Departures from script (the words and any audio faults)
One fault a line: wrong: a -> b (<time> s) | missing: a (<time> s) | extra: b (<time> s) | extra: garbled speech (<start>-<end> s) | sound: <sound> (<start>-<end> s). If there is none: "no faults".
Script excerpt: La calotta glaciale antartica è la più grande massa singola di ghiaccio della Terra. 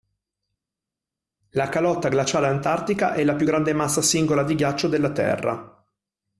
no faults